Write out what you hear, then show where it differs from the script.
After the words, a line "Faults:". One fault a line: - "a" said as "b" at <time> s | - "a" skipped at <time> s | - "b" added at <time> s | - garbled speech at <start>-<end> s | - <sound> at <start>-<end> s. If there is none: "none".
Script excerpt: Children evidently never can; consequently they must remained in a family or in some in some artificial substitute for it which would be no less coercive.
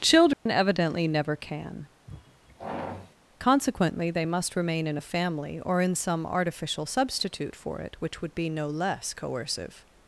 Children evidently never can; consequently they must remain in a family or in some artificial substitute for it which would be no less coercive.
Faults:
- dropout at 0.3-0.5 s
- sigh at 2.1-3.1 s
- "remained" said as "remain" at 4.6 s
- "in some" skipped at 6.2 s